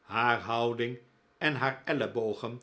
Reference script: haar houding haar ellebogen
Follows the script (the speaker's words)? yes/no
no